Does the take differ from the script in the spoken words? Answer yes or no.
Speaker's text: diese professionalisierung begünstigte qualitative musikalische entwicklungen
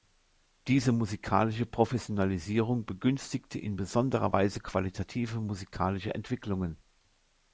yes